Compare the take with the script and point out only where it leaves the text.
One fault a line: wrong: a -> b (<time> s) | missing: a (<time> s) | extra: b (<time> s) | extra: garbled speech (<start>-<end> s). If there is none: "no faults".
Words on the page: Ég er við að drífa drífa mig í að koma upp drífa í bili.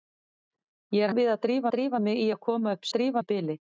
no faults